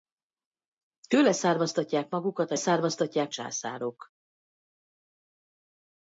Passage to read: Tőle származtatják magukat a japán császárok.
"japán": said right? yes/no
no